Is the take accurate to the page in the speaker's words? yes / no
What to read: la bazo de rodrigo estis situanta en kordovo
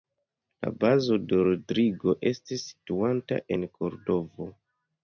yes